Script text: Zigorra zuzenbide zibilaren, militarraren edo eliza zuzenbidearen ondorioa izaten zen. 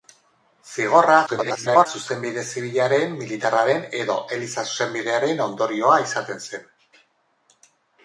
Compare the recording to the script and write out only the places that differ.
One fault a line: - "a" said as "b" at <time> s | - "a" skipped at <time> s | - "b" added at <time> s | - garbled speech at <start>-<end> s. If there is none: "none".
- garbled speech at 1.3-1.9 s